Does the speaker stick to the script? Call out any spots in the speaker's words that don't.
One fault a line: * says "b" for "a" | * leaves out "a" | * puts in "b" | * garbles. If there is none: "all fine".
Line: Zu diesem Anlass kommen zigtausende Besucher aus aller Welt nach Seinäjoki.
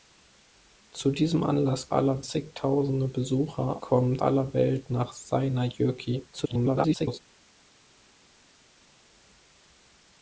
* says "aller" for "kommen"
* says "kommen" for "aus"
* garbles